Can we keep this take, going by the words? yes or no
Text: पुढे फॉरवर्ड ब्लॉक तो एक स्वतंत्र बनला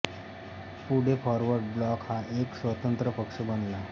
no